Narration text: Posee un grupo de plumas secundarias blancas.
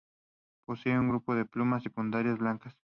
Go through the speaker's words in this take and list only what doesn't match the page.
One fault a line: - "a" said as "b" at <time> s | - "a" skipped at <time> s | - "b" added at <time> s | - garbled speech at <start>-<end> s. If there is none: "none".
none